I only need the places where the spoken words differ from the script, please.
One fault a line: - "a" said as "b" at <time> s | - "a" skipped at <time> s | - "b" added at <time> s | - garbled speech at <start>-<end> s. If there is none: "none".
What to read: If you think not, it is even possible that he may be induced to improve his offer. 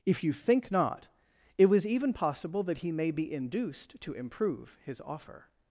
- "is" said as "was" at 1.7 s